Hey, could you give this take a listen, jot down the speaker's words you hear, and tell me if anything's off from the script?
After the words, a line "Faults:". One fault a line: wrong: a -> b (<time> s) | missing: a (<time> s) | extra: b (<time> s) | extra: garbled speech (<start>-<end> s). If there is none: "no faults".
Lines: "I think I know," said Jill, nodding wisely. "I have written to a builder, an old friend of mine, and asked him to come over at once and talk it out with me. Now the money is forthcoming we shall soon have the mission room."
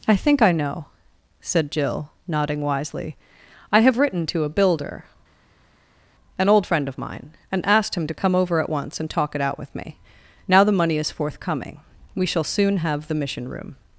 "I think I know," said Jill, nodding wisely. "I have written to a builder, an old friend of mine, and asked him to come over at once and talk it out with me. Now the money is forthcoming we shall soon have the mission room."
Faults:
no faults